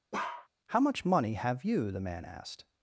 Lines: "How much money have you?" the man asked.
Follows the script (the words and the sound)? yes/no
no